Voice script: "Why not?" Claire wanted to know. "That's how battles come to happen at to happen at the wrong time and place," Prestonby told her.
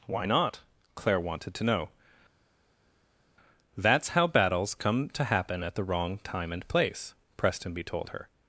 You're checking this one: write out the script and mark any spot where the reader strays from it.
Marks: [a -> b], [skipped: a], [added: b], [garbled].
"Why not?" Claire wanted to know. "That's how battles come to happen at [skipped: to happen at] the wrong time and place," Prestonby told her.